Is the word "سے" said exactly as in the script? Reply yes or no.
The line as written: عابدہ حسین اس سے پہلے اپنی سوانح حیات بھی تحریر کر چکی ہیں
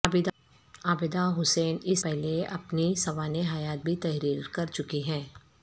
no